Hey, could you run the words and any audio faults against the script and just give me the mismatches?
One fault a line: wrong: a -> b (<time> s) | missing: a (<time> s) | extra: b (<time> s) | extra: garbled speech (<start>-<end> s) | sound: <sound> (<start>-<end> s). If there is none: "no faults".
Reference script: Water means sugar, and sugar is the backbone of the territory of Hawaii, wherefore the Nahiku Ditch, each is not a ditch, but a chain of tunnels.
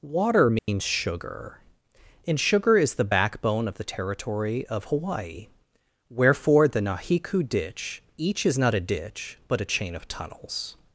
sound: dropout (0.6-0.7 s)